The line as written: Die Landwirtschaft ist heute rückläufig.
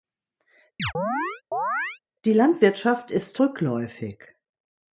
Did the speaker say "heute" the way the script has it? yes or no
no